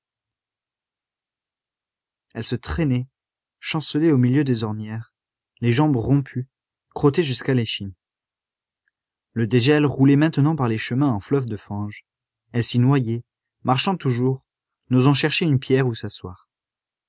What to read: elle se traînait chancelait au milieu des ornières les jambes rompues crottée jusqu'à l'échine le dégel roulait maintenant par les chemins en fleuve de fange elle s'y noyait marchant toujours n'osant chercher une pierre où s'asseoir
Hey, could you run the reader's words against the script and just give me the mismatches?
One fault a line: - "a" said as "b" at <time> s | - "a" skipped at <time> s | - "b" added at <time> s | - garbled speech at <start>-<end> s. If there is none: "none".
none